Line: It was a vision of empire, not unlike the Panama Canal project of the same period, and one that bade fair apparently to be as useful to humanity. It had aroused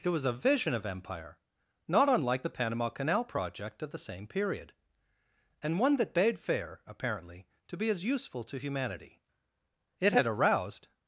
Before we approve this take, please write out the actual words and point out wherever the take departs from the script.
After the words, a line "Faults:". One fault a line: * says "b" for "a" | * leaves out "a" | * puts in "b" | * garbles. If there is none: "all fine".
It was a vision of empire, not unlike the Panama Canal project of the same period, and one that bade fair apparently to be as useful to humanity. It had aroused
Faults:
all fine